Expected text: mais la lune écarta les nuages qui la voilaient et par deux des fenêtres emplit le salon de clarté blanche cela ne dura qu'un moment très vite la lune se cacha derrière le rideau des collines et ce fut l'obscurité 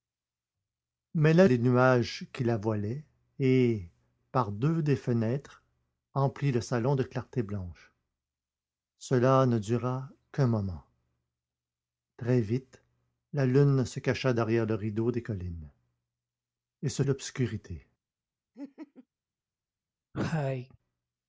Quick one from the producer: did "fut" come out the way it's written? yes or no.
no